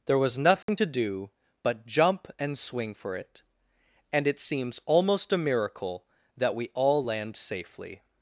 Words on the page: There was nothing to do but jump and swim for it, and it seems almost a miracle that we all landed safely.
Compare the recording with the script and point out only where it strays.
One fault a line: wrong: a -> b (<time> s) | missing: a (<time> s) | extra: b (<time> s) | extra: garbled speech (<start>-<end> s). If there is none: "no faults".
wrong: swim -> swing (2.6 s)
wrong: landed -> land (7.0 s)